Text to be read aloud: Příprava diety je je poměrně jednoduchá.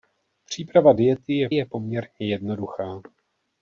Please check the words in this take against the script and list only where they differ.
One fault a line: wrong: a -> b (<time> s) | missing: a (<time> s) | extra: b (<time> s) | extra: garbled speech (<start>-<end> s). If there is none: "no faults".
no faults